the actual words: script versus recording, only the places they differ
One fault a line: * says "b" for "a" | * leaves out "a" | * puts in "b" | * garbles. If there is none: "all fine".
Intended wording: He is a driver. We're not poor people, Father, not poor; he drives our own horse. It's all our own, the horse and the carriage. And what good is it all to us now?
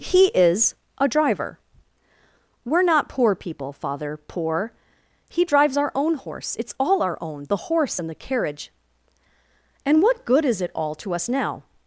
* leaves out "not"